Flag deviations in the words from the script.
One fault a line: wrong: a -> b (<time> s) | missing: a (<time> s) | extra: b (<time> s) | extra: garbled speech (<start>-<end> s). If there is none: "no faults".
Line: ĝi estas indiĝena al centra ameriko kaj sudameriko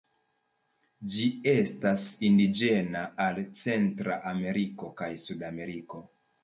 no faults